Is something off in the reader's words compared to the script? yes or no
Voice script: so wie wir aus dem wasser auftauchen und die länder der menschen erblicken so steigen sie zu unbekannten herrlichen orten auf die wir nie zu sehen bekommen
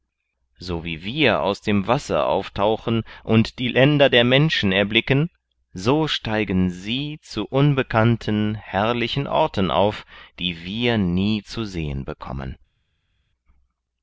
no